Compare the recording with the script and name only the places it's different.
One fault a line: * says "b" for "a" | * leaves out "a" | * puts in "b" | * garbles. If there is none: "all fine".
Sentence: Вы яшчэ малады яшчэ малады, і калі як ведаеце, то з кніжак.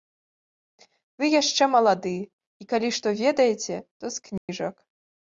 * leaves out "яшчэ малады"
* says "што" for "як"